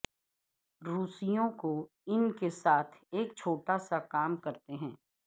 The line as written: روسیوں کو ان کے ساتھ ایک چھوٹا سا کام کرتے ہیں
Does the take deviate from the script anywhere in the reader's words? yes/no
no